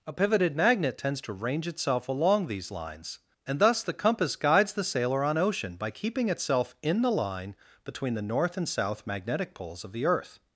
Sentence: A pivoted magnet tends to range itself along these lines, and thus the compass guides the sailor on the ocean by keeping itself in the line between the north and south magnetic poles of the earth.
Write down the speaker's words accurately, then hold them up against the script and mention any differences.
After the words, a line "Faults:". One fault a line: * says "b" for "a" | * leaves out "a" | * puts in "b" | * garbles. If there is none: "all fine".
A pivoted magnet tends to range itself along these lines, and thus the compass guides the sailor on ocean by keeping itself in the line between the north and south magnetic poles of the earth.
Faults:
* leaves out "the"